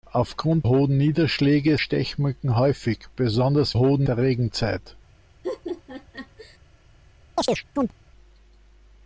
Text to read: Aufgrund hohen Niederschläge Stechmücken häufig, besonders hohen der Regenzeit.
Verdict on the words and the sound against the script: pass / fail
fail